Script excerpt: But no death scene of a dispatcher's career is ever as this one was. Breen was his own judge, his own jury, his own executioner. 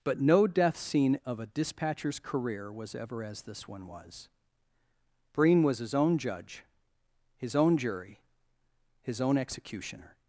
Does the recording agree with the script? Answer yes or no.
no